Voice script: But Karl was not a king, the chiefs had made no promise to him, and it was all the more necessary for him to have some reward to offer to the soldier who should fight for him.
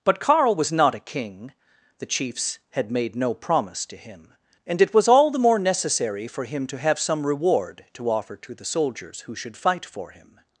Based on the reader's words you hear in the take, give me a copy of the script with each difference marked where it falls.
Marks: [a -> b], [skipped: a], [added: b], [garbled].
But Karl was not a king, the chiefs had made no promise to him, and it was all the more necessary for him to have some reward to offer to the [soldier -> soldiers] who should fight for him.